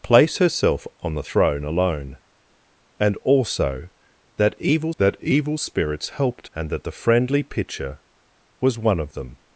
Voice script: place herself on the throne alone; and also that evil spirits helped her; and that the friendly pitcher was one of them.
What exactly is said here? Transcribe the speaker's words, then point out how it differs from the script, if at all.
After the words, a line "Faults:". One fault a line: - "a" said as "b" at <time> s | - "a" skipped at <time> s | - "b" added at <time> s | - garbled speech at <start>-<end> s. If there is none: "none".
place herself on the throne alone; and also that evil that evil spirits helped; and that the friendly pitcher was one of them.
Faults:
- "that evil" added at 5.0 s
- "her" skipped at 6.5 s